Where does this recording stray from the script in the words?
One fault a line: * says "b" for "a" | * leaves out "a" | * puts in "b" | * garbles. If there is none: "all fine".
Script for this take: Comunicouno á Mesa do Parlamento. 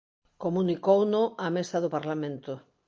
all fine